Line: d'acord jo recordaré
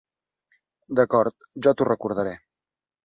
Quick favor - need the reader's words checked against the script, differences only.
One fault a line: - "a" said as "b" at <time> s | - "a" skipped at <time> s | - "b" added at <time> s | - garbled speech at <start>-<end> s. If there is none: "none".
- "t'ho" added at 1.8 s